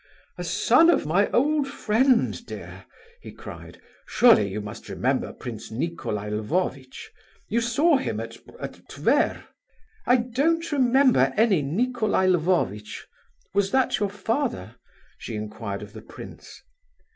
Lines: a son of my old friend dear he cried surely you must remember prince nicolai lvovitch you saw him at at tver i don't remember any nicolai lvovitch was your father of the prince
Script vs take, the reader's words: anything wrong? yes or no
yes